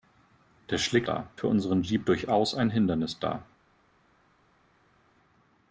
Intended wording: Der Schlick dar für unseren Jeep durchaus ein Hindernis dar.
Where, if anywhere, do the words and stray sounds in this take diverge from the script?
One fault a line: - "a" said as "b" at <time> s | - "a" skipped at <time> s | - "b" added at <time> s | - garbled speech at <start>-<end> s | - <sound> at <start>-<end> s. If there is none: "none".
none